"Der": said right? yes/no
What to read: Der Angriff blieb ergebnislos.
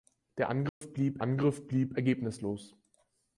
yes